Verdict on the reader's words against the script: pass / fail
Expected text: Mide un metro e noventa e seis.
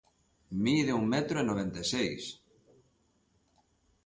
pass